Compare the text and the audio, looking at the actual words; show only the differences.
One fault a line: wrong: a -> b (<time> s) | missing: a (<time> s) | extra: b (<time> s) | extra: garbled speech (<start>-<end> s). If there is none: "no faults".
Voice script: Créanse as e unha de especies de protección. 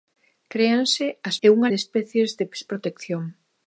no faults